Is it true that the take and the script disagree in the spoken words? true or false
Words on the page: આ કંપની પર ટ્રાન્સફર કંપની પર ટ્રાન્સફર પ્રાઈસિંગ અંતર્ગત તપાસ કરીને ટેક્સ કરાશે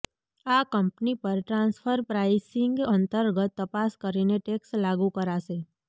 true